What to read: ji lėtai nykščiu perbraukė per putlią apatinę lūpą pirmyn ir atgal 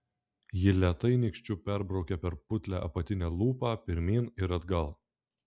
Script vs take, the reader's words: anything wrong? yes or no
no